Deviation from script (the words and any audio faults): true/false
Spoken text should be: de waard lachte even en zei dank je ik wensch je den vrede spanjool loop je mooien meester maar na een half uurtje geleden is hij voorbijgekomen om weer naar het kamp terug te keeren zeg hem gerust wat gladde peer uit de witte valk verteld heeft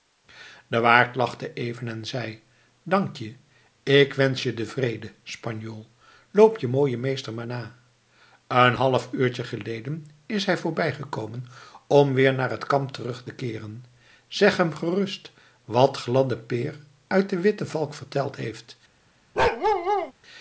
true